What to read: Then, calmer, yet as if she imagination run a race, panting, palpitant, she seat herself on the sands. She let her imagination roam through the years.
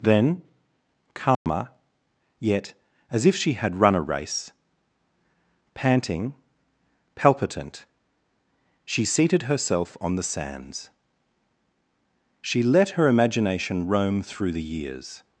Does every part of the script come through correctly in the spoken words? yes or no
no